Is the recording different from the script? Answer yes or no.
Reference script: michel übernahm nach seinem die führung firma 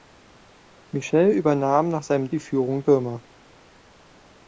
no